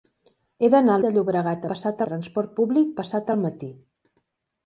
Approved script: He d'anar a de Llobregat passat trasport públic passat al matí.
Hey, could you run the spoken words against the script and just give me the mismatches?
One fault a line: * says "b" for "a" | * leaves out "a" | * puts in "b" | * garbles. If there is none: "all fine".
all fine